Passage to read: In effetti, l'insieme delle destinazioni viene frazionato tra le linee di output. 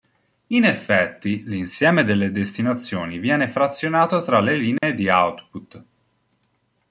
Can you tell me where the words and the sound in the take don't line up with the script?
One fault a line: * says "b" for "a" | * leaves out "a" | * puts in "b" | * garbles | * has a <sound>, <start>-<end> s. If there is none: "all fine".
* has a dropout, 4.8-4.8 s